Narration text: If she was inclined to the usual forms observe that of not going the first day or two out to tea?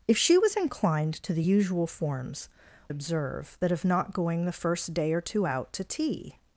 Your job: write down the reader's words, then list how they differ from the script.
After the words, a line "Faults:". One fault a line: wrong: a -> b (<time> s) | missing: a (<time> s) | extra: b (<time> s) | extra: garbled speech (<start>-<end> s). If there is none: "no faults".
If she was inclined to the usual forms observe that of not going the first day or two out to tea?
Faults:
no faults